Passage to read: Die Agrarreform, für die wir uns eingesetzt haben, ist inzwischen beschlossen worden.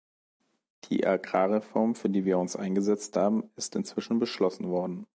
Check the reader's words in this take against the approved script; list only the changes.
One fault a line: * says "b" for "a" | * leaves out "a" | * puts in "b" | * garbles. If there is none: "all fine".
all fine